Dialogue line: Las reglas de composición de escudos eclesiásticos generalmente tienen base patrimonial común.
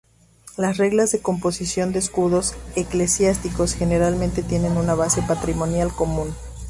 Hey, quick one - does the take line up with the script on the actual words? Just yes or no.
no